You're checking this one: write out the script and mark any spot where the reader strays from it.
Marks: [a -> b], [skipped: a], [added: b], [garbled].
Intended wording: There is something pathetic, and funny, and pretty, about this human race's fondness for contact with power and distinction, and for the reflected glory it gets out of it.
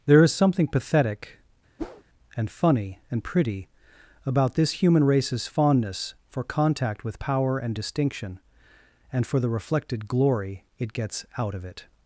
There is something pathetic, and funny, and pretty, about this human race's fondness for contact with power and distinction, and for the reflected glory it gets out of it.